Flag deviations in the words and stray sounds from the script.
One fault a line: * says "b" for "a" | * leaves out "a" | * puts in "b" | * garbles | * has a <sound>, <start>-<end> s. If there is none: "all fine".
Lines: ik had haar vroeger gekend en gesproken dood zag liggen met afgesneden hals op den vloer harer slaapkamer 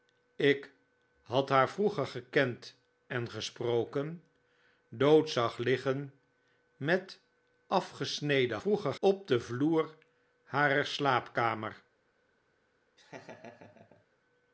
* says "vroeger" for "hals"
* has a laugh, 13.0-14.1 s